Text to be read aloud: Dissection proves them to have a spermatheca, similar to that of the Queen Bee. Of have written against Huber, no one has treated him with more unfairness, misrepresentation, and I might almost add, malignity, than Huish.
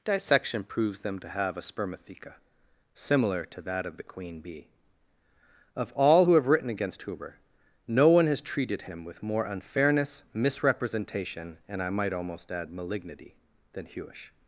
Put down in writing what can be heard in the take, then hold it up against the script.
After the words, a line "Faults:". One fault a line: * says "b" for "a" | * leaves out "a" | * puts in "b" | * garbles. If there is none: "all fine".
Dissection proves them to have a spermatheca, similar to that of the Queen Bee. Of all who have written against Huber, no one has treated him with more unfairness, misrepresentation, and I might almost add, malignity, than Huish.
Faults:
* puts in "all who"